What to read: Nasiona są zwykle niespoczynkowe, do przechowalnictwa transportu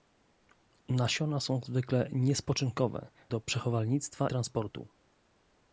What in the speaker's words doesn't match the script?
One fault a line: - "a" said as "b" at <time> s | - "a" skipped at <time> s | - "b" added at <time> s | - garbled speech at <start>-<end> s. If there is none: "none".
none